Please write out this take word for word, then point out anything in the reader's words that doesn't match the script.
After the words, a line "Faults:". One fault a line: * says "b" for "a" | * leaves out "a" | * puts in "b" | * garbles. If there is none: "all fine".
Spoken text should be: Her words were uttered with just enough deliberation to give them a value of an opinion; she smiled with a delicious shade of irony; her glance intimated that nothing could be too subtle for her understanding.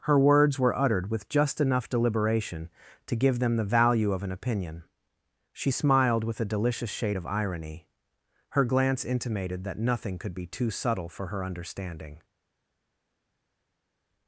Her words were uttered with just enough deliberation to give them the value of an opinion; she smiled with a delicious shade of irony; her glance intimated that nothing could be too subtle for her understanding.
Faults:
* says "the" for "a"